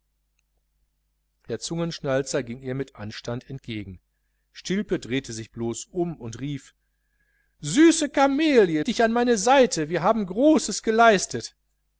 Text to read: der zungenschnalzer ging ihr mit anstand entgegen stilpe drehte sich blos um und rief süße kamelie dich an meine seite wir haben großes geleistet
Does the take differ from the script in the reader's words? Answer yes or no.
no